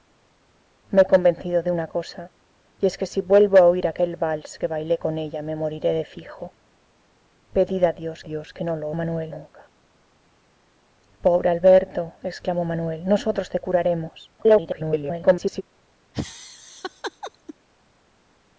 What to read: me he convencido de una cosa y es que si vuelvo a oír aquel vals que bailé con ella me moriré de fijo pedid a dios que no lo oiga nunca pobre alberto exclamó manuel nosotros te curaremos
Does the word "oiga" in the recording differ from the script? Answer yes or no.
yes